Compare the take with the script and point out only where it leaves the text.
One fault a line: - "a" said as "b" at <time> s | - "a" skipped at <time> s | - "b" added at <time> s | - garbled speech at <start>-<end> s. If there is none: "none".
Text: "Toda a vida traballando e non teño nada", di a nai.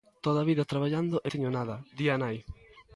- "non" skipped at 1.3 s